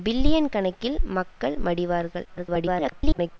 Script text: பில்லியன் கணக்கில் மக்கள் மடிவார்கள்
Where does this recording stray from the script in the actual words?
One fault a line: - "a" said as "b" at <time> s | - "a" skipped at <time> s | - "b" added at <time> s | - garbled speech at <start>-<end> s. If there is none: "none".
- garbled speech at 2.2-3.4 s